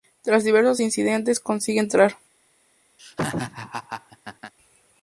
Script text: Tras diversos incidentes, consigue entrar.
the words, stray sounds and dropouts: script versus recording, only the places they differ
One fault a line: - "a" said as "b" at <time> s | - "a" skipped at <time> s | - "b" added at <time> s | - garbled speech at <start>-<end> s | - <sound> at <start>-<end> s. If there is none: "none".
- laugh at 3.0-4.5 s